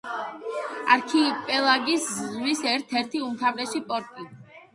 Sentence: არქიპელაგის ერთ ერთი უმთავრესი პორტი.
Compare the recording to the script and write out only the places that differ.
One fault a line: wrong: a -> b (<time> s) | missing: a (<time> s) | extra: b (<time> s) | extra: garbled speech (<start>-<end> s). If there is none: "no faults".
extra: ზღვის (2.1 s)